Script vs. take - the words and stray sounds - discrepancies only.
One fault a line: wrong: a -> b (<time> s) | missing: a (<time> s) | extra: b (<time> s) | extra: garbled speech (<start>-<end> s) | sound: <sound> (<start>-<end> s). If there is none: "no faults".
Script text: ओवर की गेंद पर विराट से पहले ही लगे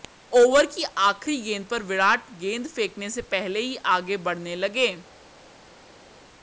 extra: आखिरी (1.0 s)
extra: गेंद फेंकने (2.4 s)
extra: आगे बढ़ने (3.9 s)